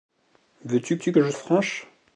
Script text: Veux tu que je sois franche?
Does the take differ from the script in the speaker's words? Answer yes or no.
yes